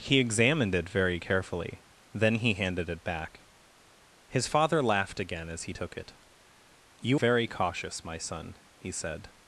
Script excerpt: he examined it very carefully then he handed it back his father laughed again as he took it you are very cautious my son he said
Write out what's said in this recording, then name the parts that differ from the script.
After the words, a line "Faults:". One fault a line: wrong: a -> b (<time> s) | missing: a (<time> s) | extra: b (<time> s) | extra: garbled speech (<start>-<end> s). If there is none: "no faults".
he examined it very carefully then he handed it back his father laughed again as he took it you very cautious my son he said
Faults:
missing: are (7.2 s)